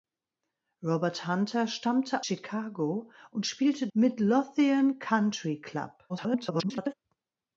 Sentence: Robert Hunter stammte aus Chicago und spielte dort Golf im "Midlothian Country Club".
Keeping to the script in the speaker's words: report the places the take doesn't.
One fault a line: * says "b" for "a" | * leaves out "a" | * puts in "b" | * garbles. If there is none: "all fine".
* leaves out "aus"
* leaves out "dort Golf im"
* garbles